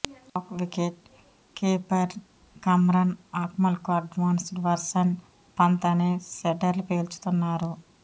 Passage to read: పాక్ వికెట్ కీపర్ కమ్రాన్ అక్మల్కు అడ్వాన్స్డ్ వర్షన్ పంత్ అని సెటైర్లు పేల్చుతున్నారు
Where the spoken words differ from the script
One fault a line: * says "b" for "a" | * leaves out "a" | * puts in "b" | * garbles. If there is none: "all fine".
all fine